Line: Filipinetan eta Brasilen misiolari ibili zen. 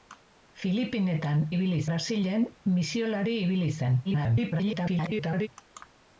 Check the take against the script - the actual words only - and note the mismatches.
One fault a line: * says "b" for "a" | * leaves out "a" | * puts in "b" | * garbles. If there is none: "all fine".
* says "ibili" for "eta"
* garbles